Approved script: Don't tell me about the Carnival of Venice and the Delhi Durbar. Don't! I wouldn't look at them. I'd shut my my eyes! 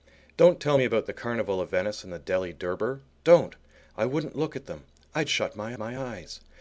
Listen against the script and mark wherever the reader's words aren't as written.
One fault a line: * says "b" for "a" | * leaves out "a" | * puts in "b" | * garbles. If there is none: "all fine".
all fine